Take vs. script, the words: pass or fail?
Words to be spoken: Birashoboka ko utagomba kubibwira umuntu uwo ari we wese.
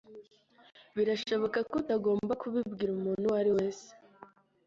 fail